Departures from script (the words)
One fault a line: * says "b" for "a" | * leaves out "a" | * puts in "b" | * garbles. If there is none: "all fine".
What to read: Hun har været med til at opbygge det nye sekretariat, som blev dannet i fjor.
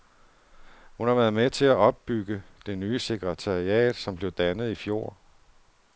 all fine